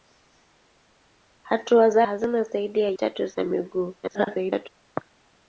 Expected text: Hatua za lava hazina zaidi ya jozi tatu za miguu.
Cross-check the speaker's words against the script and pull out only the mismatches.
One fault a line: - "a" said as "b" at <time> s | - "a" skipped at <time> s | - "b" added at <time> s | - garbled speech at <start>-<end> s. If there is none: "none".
- "lava" skipped at 2.0 s
- "jozi" skipped at 2.9 s
- garbled speech at 4.0-4.7 s